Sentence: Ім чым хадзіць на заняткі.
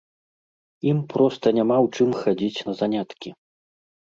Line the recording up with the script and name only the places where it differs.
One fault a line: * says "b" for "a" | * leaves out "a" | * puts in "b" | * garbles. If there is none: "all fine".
* puts in "проста няма ў"